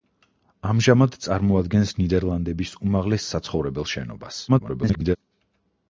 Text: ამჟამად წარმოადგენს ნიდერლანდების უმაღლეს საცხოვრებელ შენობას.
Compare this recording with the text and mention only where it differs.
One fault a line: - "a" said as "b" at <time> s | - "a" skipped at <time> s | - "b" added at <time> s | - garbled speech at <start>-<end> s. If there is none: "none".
- garbled speech at 4.5-5.2 s